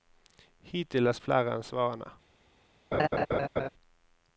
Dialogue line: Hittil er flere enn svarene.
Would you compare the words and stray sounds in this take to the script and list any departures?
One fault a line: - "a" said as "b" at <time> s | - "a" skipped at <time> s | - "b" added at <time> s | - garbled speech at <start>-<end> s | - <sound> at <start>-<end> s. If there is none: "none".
- laugh at 2.9-3.7 s